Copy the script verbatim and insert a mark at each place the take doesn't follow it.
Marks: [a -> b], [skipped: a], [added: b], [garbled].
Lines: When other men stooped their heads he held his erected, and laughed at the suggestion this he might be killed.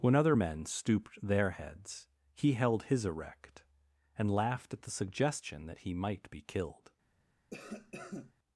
When other men stooped their heads he held his [erected, -> erect] and laughed at the suggestion [this -> that] he might be killed.